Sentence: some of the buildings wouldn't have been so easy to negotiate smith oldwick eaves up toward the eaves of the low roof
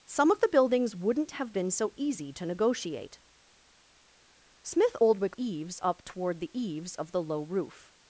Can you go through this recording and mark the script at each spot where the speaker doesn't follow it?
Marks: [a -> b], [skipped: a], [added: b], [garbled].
some of the buildings wouldn't have been so easy to negotiate smith oldwick eaves up toward the eaves of the low roof